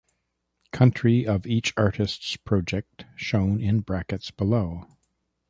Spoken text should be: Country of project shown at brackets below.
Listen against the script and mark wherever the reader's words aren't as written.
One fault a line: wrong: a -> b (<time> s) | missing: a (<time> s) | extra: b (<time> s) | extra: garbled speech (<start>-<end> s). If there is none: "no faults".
extra: each artists (1.4 s)
wrong: at -> in (3.6 s)